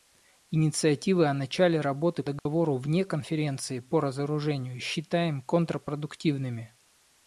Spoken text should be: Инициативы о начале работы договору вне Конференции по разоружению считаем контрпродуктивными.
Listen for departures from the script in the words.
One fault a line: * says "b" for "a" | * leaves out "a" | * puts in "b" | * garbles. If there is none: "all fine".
all fine